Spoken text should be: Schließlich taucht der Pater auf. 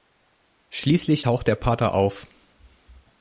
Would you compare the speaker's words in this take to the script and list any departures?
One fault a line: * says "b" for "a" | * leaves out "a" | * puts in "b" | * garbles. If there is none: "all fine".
all fine